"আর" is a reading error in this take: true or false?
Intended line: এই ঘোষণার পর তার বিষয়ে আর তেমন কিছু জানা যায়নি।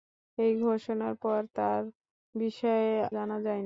true